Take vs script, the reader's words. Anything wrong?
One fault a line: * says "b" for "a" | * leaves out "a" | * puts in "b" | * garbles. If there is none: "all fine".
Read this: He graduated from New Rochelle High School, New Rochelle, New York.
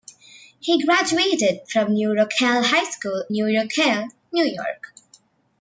all fine